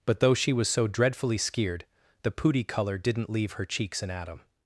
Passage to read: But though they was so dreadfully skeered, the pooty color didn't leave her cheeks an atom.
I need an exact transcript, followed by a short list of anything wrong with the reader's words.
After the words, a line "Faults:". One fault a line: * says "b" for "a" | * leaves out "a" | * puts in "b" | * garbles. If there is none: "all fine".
But though she was so dreadfully skeered, the pooty color didn't leave her cheeks an atom.
Faults:
* says "she" for "they"